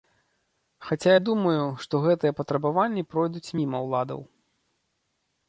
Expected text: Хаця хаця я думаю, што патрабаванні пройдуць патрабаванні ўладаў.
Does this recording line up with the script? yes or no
no